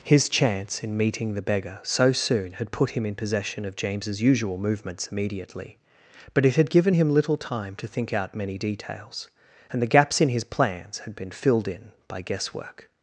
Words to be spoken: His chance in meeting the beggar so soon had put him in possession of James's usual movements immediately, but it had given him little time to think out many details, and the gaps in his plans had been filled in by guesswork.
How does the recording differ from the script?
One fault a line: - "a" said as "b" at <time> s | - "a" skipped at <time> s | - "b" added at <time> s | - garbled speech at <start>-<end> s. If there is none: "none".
none